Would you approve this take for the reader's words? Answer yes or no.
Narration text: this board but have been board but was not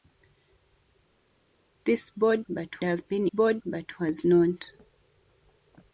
yes